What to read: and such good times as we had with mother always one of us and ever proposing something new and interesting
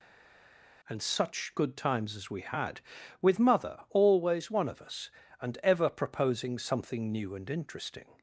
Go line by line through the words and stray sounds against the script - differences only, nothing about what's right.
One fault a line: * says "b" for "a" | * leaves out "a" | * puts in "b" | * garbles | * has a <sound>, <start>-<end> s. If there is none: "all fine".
all fine